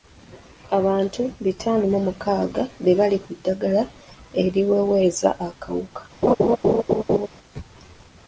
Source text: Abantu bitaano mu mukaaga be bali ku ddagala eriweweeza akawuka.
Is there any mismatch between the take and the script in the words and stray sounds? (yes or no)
yes